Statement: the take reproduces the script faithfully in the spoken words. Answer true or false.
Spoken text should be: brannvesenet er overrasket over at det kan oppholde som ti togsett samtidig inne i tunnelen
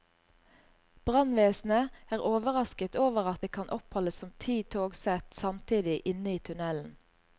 true